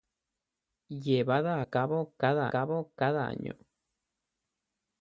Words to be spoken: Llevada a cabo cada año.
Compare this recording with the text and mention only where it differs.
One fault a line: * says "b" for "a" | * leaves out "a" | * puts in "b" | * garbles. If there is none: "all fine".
* puts in "cabo cada"